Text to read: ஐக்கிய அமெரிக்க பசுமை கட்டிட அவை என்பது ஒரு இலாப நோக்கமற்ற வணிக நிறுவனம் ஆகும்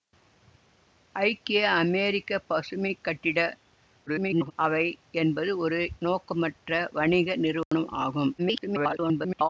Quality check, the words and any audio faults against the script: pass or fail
fail